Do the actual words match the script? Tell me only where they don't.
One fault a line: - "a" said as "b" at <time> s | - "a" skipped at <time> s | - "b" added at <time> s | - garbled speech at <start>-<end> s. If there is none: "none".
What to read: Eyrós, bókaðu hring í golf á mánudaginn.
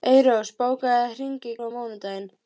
- "golf" skipped at 1.5 s